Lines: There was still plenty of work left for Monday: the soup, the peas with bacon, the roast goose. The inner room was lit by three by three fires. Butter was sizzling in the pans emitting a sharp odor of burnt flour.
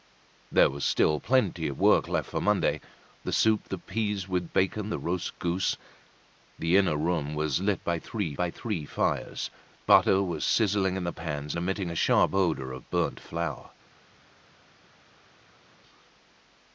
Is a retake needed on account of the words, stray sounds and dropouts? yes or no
no